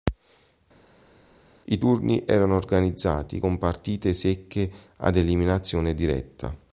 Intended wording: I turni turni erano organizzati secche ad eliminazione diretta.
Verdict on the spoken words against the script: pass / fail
fail